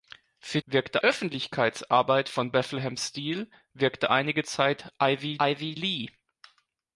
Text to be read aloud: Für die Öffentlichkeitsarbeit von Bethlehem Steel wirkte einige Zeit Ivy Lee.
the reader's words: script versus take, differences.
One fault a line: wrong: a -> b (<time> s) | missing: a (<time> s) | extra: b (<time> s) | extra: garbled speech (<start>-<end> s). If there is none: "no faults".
wrong: die -> wirkte (0.7 s)
extra: Ivy (5.4 s)